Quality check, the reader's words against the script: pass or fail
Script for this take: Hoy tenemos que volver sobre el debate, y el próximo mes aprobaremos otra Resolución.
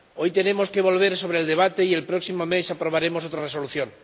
pass